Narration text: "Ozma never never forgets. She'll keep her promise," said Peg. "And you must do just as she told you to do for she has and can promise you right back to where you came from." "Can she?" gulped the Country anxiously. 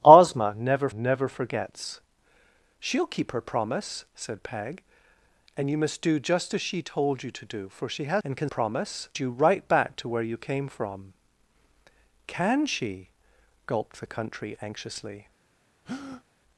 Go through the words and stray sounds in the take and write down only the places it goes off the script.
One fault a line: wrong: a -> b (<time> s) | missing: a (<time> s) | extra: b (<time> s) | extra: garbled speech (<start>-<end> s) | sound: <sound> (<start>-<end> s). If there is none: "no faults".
sound: breath (15.8-16.2 s)